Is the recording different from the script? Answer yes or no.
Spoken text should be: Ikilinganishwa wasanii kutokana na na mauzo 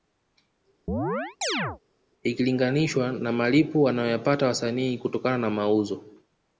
yes